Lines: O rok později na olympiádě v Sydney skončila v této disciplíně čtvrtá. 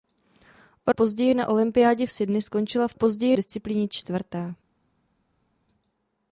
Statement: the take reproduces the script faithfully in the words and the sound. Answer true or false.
false